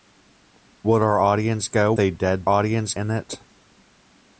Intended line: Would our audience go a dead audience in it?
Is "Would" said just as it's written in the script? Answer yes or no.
yes